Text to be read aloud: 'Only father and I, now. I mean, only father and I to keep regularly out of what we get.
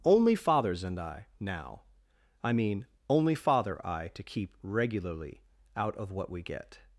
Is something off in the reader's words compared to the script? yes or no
yes